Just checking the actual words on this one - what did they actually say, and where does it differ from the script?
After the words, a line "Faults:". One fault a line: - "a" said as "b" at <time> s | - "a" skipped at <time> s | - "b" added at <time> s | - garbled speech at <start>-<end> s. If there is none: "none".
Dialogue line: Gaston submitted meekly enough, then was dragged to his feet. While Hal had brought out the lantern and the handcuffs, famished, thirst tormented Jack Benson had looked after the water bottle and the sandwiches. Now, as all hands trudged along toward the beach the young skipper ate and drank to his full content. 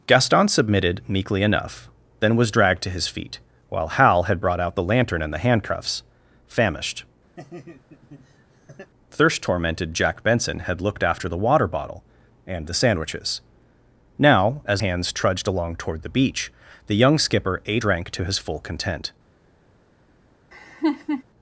Gaston submitted meekly enough, then was dragged to his feet. While Hal had brought out the lantern and the handcuffs, famished, thirst tormented Jack Benson had looked after the water bottle and the sandwiches. Now, as hands trudged along toward the beach the young skipper ate drank to his full content.
Faults:
- "all" skipped at 14.8 s
- "and" skipped at 17.8 s